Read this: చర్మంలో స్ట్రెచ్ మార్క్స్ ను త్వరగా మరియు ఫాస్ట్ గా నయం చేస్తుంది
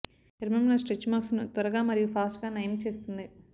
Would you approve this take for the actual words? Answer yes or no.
yes